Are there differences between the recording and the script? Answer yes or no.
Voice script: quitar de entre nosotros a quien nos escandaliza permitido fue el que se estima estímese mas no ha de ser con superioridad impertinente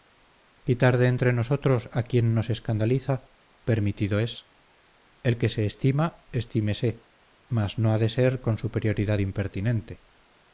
yes